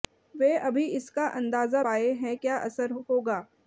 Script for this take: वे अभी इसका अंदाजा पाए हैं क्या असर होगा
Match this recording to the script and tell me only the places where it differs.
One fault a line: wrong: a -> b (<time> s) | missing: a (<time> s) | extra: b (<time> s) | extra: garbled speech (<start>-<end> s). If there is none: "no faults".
no faults